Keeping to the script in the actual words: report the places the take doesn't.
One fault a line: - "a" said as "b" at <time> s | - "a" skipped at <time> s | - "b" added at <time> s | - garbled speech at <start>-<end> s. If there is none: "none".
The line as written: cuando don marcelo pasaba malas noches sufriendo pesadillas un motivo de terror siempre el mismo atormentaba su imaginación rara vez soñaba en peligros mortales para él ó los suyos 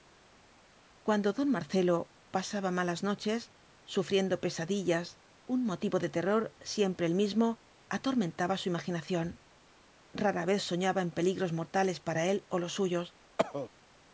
none